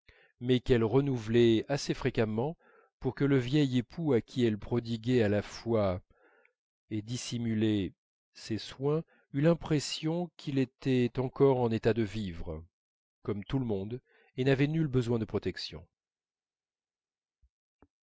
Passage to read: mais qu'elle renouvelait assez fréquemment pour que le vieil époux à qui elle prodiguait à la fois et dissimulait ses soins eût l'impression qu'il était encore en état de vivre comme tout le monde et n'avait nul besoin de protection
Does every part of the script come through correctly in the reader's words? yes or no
yes